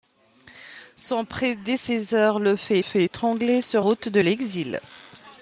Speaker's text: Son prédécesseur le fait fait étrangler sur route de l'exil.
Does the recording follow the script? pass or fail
pass